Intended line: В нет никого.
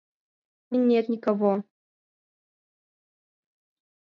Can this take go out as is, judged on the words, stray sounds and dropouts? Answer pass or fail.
pass